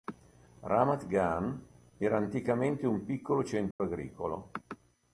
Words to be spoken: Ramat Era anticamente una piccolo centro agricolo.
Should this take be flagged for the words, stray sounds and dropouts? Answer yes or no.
yes